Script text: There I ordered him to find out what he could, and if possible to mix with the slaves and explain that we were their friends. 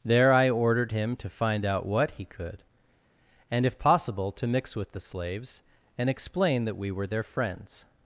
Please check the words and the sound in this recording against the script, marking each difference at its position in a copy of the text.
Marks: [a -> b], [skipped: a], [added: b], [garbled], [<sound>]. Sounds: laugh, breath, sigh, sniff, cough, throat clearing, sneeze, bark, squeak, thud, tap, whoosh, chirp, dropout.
There I ordered him to find out what he could, and if possible to mix with the slaves and explain that we were their friends.